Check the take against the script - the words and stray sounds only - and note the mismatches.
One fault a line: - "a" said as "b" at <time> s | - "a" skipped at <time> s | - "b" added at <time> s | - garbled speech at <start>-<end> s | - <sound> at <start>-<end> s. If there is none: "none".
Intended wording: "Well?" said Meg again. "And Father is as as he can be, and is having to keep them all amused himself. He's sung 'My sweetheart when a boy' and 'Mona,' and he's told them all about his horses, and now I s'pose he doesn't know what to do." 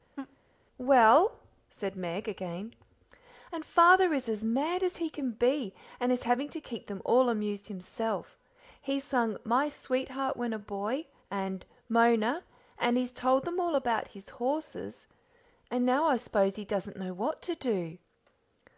- laugh at 0.2-0.4 s
- "mad" added at 4.4 s